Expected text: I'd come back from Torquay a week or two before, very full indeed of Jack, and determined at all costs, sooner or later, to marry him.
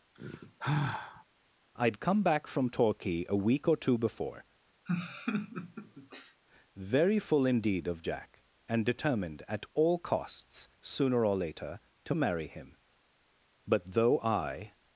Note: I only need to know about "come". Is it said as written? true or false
true